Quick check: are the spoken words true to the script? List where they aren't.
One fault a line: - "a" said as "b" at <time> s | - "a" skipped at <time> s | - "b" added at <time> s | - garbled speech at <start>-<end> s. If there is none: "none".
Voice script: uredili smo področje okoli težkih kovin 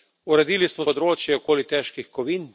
none